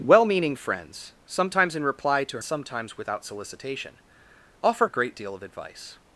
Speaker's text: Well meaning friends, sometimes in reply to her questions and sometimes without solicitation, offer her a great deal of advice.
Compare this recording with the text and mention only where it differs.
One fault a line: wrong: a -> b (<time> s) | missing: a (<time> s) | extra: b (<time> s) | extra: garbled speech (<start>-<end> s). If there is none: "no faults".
missing: her questions and (2.4 s)
missing: her (4.9 s)